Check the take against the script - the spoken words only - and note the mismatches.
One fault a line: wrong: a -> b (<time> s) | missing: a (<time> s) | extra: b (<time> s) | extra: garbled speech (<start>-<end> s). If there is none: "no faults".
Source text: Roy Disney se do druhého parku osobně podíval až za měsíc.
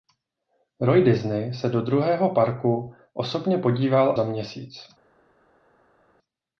missing: až (4.2 s)